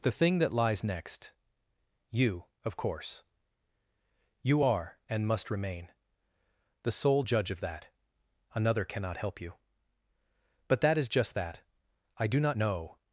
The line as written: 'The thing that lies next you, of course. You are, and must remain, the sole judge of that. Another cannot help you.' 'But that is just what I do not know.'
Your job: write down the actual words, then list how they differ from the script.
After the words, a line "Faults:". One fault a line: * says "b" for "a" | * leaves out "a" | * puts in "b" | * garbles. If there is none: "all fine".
'The thing that lies next you, of course. You are, and must remain, the sole judge of that. Another cannot help you.' 'But that is just that I do not know.'
Faults:
* says "that" for "what"